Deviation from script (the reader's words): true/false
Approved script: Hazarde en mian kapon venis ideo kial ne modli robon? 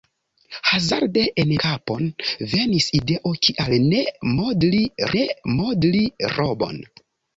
true